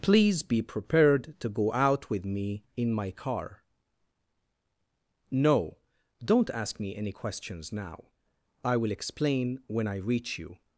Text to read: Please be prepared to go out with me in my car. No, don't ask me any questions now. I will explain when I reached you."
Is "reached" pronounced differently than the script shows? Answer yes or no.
yes